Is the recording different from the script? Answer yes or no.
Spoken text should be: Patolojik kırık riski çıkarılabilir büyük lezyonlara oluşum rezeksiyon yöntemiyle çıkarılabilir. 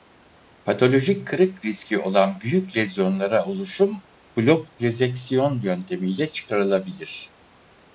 yes